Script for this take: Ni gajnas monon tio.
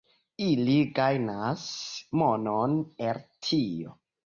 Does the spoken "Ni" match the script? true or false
false